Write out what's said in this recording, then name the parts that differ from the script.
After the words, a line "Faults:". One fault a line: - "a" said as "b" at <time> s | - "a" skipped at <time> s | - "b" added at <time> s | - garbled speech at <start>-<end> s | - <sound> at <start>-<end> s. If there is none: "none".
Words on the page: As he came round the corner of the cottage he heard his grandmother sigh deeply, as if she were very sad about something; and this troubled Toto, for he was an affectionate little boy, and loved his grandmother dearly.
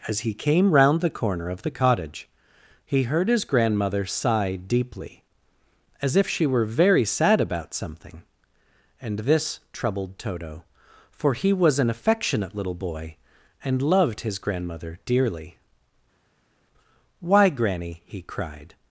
As he came round the corner of the cottage he heard his grandmother sigh deeply, as if she were very sad about something; and this troubled Toto, for he was an affectionate little boy, and loved his grandmother dearly. "Why, Granny!" he cried
Faults:
- "Why Granny he cried" added at 17.2 s